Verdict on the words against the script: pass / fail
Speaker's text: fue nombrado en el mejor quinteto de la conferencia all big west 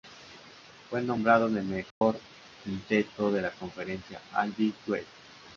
pass